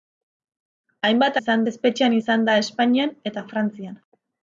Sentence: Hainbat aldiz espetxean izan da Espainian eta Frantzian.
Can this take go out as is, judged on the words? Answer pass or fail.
fail